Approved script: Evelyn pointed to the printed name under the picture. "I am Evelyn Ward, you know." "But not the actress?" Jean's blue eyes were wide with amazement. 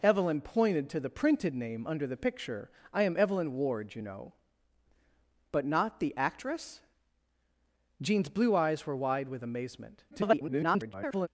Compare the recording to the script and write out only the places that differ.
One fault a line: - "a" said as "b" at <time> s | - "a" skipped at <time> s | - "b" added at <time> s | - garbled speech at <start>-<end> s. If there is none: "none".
- garbled speech at 10.1-11.3 s